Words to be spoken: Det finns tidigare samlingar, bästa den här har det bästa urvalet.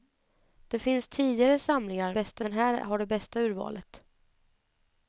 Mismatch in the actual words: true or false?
false